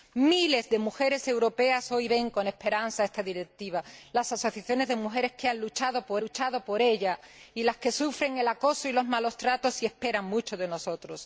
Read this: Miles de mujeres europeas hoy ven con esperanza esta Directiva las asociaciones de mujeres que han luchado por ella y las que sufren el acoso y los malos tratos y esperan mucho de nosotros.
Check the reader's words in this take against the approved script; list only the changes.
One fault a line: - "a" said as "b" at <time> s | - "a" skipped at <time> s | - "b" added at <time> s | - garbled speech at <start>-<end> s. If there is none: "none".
- "luchado por" added at 6.2 s